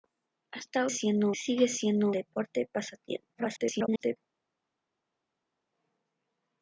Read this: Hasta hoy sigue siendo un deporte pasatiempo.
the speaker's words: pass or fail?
fail